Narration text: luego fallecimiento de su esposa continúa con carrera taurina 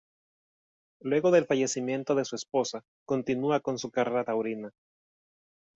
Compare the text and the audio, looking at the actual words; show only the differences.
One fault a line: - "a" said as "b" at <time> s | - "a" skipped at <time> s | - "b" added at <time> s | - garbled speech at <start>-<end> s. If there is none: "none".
- "del" added at 1.3 s
- "su" added at 3.8 s